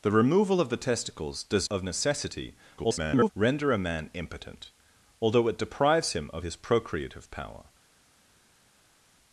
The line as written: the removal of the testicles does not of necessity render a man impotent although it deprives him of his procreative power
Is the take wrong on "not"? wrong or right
wrong